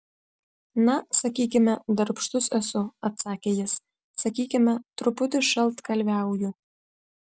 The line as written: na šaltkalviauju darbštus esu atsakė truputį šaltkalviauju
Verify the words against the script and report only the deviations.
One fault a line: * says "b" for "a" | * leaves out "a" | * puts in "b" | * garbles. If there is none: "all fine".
* says "sakykime" for "šaltkalviauju"
* puts in "jis sakykime"